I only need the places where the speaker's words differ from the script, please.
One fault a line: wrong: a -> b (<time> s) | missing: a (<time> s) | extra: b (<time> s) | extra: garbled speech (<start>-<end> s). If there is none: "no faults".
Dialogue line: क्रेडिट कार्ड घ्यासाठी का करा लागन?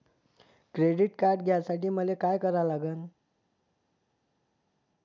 extra: मले (1.9 s)